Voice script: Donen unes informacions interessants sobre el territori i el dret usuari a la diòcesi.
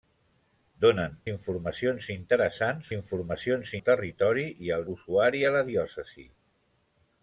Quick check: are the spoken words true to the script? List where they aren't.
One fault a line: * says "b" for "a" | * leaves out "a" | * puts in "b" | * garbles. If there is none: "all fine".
* leaves out "unes"
* says "informacions" for "sobre"
* leaves out "dret"